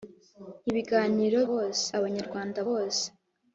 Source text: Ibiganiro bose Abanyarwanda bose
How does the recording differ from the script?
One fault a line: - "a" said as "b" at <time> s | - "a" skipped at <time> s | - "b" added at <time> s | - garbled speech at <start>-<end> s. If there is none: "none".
none